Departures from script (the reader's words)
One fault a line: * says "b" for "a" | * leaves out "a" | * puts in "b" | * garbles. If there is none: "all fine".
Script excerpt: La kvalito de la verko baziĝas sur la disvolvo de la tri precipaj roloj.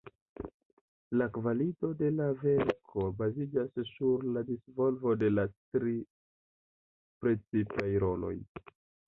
all fine